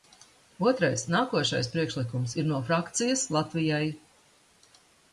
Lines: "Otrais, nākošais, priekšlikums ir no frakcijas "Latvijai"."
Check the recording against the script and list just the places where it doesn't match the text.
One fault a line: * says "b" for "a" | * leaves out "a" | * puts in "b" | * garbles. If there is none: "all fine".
all fine